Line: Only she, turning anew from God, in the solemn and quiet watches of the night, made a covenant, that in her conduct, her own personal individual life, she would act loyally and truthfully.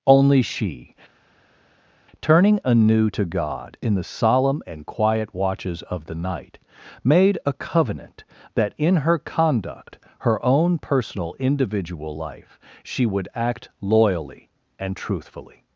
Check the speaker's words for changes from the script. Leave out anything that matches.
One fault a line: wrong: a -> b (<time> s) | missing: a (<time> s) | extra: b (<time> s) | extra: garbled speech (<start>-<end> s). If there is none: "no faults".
wrong: from -> to (3.1 s)